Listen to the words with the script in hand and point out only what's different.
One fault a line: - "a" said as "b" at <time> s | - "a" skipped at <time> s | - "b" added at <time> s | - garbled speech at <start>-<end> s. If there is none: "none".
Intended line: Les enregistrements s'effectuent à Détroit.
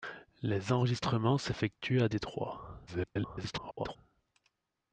- garbled speech at 2.9-4.0 s